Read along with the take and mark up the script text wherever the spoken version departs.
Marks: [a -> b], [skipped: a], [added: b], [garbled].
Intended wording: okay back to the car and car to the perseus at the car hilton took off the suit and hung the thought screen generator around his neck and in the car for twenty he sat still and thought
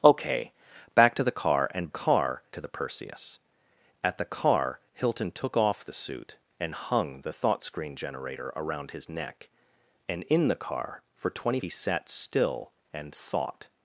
okay back to the car and car to the perseus at the car hilton took off the suit and hung the thought screen generator around his neck and in the car for twenty he sat still and thought